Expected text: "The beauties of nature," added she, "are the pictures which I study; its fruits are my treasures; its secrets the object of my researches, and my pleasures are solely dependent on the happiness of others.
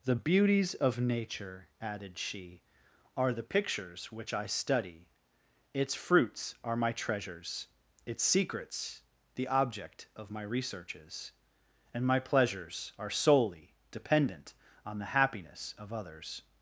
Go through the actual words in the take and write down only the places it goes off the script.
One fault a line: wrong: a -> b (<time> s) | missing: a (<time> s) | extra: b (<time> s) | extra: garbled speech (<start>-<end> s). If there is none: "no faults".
no faults